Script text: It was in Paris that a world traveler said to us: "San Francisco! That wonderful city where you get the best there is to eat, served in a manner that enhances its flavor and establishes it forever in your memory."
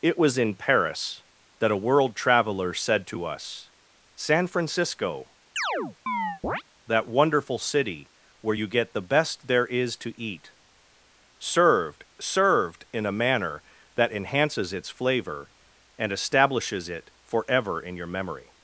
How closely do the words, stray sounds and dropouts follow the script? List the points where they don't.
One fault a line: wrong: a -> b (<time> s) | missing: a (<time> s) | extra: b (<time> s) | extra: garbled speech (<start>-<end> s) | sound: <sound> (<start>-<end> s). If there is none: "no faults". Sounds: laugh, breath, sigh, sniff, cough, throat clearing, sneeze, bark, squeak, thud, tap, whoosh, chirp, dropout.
sound: chirp (5.6-6.6 s)
extra: served (12.2 s)